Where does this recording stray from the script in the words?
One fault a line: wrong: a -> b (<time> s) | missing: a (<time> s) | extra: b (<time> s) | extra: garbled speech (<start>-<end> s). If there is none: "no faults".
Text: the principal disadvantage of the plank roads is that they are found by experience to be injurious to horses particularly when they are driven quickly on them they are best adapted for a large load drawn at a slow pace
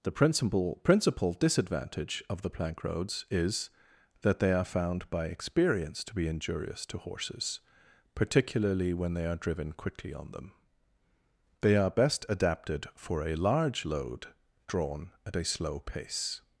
extra: principal (0.8 s)